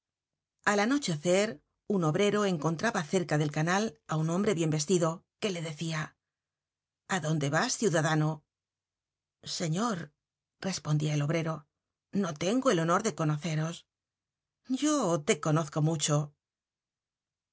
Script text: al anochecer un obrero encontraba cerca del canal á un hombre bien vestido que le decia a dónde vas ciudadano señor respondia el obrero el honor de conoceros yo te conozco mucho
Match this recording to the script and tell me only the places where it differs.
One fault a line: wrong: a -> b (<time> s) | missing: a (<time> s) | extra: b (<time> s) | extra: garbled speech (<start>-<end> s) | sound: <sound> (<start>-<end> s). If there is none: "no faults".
extra: no tengo (12.1 s)